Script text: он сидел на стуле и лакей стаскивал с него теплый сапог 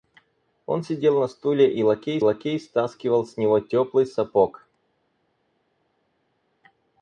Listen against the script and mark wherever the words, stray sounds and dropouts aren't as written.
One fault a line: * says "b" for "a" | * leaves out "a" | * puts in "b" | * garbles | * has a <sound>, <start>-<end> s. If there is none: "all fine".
* puts in "лакей"